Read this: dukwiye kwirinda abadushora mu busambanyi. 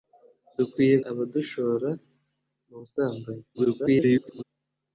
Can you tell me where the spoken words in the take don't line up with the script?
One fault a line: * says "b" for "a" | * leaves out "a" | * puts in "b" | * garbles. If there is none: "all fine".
* leaves out "kwirinda"
* garbles